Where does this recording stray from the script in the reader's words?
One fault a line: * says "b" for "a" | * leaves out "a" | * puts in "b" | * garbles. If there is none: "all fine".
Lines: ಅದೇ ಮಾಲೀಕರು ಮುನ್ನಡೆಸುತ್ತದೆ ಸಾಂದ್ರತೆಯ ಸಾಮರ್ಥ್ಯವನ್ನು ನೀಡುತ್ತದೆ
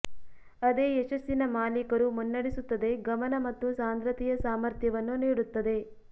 * puts in "ಯಶಸ್ಸಿನ"
* puts in "ಗಮನ ಮತ್ತು"